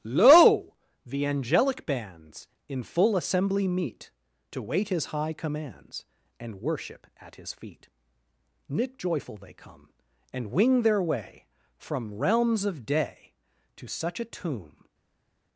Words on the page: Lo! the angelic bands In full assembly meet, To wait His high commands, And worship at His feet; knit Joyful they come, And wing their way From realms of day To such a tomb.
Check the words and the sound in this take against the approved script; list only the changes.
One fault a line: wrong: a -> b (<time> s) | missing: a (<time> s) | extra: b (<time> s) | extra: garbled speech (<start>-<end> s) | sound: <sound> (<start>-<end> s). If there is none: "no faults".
no faults